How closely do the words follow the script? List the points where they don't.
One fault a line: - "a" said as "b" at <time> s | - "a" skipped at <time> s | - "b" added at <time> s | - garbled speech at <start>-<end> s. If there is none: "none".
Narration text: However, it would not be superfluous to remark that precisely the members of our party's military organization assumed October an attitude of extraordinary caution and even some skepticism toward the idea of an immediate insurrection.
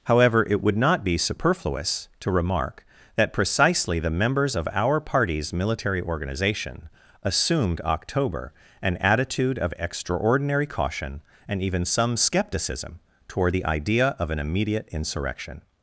none